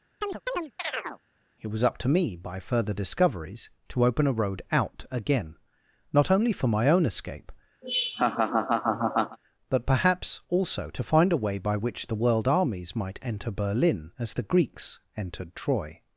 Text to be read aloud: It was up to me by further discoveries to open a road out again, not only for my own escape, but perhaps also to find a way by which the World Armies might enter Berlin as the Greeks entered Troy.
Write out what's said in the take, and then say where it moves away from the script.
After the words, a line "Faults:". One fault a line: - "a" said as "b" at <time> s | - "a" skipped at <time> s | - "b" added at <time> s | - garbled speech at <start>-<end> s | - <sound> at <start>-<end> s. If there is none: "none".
It was up to me by further discoveries to open a road out again, not only for my own escape, but perhaps also to find a way by which the World Armies might enter Berlin as the Greeks entered Troy.
Faults:
- chirp at 0.2-1.2 s
- laugh at 7.8-9.4 s